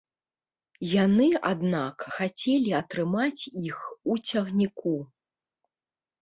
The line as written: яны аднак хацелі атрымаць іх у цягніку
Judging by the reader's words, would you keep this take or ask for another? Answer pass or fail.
pass